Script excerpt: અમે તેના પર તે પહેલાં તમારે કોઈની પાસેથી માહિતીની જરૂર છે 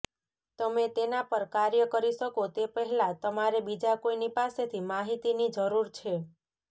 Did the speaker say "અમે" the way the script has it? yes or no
no